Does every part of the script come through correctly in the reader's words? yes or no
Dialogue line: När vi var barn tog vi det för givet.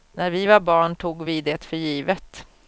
yes